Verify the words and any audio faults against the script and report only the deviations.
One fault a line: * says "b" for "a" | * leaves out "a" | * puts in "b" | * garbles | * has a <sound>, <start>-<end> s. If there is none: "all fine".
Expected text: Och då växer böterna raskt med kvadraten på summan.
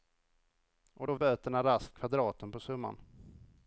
* leaves out "växer"
* leaves out "med"